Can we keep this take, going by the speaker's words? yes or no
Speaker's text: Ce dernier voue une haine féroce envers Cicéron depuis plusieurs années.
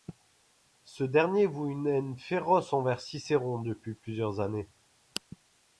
yes